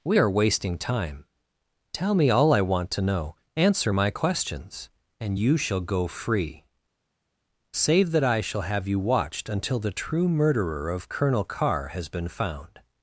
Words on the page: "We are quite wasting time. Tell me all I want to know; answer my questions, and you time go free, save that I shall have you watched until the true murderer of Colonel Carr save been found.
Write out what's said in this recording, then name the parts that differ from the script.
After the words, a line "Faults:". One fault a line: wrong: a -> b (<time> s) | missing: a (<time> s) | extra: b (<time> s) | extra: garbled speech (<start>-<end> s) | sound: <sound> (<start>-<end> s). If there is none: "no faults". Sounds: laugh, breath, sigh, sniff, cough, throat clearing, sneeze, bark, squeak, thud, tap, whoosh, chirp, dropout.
"We are wasting time. Tell me all I want to know; answer my questions, and you shall go free, save that I shall have you watched until the true murderer of Colonel Carr has been found.
Faults:
missing: quite (0.3 s)
wrong: time -> shall (5.6 s)
wrong: save -> has (11.9 s)